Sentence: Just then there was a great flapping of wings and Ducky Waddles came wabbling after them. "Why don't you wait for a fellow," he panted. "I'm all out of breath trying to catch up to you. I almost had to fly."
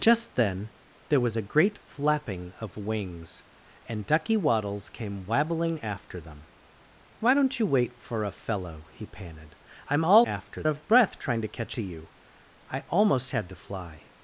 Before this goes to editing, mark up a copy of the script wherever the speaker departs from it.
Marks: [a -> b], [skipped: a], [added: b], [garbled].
Just then there was a great flapping of wings and Ducky Waddles came wabbling after them. "Why don't you wait for a fellow," he panted. "I'm all [out -> after] of breath trying to catch [skipped: up] to you. I almost had to fly."